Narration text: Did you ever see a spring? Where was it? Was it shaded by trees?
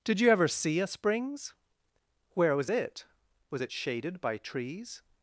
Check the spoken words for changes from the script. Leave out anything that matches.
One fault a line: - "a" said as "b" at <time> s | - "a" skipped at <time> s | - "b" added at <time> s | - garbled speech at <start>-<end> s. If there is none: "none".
- "spring" said as "springs" at 0.9 s